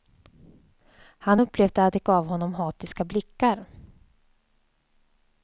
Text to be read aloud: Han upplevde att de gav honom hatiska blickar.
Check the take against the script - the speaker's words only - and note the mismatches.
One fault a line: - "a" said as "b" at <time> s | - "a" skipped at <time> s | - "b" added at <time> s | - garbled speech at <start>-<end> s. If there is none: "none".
none